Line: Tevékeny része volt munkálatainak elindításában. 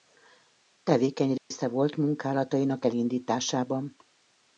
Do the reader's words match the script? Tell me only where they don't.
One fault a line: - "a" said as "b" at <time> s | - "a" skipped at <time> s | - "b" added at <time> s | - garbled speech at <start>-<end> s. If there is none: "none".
none